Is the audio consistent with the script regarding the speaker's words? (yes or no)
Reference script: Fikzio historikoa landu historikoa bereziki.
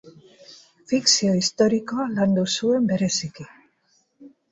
no